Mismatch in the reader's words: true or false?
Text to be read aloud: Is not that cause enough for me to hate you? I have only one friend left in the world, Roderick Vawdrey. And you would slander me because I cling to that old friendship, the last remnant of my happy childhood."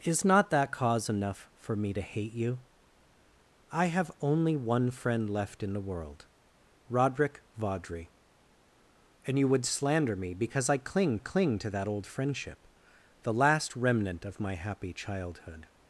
true